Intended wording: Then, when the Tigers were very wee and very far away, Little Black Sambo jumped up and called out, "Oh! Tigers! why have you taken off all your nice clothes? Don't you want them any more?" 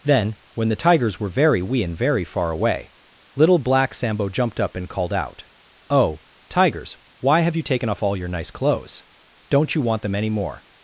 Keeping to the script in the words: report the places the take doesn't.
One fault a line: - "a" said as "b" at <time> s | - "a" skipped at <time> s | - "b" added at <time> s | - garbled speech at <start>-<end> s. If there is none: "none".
none